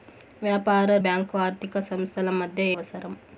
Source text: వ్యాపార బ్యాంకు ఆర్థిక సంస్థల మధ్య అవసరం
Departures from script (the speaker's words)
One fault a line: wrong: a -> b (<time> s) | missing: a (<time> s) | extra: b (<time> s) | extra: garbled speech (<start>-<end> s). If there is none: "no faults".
no faults